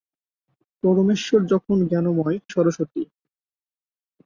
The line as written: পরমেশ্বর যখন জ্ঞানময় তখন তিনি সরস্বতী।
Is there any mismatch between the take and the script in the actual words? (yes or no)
yes